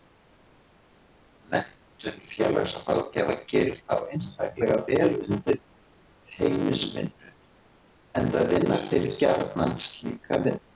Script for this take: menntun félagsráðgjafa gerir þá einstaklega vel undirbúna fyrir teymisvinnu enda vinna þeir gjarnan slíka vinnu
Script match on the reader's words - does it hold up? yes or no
yes